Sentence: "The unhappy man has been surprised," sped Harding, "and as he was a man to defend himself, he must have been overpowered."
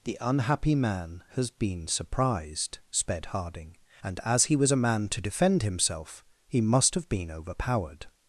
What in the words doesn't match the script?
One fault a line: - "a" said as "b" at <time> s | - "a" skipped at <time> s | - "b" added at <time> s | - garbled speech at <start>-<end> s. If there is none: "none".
none